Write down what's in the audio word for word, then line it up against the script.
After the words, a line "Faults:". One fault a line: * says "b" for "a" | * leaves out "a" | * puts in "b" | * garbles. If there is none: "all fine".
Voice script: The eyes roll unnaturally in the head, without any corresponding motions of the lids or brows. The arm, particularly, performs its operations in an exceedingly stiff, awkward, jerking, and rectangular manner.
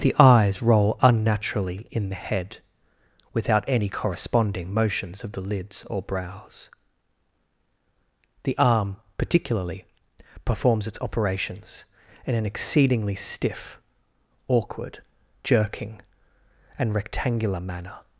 The eyes roll unnaturally in the head, without any corresponding motions of the lids or brows. The arm, particularly, performs its operations in an exceedingly stiff, awkward, jerking, and rectangular manner.
Faults:
all fine